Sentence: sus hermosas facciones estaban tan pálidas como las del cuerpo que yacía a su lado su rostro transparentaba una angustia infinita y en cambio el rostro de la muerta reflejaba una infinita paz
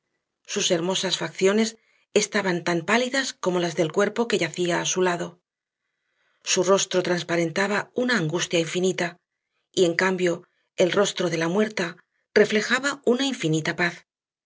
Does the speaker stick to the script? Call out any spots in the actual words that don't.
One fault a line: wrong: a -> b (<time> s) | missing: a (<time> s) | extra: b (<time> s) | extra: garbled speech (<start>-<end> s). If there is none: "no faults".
no faults